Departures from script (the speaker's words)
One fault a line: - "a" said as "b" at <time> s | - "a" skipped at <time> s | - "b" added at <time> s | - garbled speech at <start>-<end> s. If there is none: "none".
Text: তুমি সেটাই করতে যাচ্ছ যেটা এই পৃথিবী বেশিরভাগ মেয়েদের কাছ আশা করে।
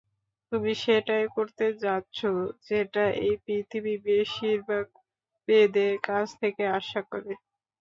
- "থেকে" added at 6.4 s